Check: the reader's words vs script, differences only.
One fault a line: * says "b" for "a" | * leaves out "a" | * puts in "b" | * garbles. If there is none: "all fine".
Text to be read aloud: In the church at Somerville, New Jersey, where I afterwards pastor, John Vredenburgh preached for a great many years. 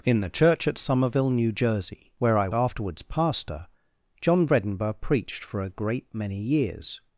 all fine